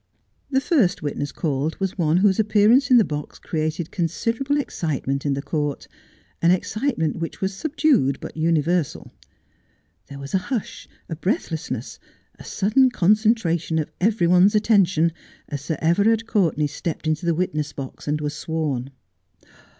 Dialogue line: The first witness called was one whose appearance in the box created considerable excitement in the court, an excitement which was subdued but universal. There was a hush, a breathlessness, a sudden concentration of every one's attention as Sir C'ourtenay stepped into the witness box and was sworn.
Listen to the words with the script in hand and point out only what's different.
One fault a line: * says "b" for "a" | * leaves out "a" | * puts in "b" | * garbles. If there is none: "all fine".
* puts in "Everard"